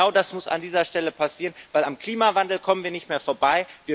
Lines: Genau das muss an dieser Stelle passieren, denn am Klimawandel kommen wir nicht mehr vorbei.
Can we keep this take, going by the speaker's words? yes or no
yes